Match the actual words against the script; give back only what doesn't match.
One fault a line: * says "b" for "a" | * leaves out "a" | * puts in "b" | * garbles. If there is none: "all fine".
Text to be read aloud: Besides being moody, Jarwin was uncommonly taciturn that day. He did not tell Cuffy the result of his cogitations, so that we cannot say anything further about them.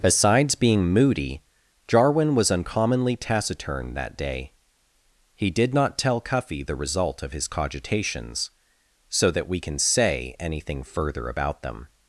* says "can" for "cannot"